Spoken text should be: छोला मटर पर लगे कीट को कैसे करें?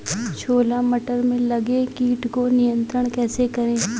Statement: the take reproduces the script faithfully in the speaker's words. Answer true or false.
false